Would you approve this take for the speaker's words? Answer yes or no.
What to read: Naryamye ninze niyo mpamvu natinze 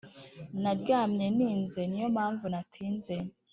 yes